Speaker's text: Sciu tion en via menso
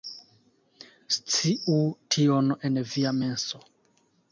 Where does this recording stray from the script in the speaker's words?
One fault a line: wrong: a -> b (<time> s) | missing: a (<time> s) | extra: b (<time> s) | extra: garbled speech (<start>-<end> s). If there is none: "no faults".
no faults